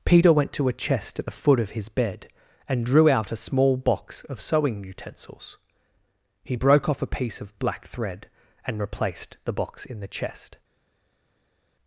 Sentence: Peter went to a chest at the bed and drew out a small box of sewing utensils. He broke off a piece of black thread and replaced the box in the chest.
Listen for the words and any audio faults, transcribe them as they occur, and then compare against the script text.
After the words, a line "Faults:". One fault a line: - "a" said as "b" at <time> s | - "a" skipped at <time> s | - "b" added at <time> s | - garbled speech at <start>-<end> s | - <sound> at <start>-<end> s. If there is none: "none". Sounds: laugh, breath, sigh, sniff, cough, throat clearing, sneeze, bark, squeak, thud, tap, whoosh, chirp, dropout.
Peter went to a chest at the foot of his bed and drew out a small box of sewing utensils. He broke off a piece of black thread and replaced the box in the chest.
Faults:
- "foot of his" added at 1.3 s